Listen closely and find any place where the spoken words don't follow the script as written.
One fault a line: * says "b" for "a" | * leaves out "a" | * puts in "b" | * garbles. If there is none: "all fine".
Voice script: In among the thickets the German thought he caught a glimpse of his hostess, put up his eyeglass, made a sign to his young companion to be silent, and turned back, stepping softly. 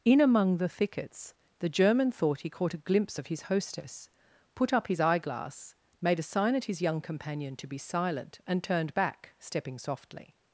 * says "at" for "to"